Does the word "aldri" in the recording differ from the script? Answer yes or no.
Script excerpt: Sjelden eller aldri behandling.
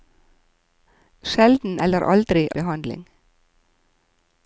no